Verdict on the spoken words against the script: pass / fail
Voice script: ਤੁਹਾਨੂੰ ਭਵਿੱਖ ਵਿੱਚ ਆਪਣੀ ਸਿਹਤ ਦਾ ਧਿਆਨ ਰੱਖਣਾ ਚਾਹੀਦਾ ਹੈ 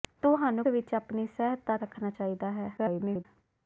fail